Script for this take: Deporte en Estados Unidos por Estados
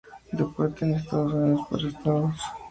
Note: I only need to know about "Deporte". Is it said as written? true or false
true